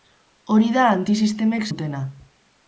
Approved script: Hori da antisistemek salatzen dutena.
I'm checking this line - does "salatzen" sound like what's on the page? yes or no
no